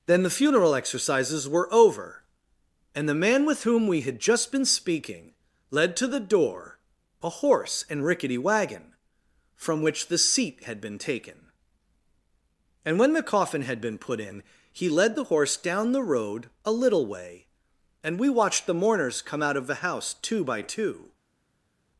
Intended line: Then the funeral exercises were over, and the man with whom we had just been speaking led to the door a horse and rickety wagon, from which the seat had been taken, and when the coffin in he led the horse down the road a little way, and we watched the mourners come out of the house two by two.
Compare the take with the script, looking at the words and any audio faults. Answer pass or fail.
fail